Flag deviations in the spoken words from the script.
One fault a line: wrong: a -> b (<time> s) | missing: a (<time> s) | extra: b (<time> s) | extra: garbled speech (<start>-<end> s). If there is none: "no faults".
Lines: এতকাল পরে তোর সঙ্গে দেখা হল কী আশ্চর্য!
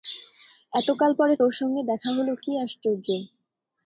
no faults